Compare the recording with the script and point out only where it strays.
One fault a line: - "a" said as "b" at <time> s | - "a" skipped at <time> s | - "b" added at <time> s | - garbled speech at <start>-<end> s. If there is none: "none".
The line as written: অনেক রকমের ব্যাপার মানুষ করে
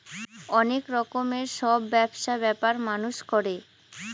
- "সব ব্যবসা" added at 1.6 s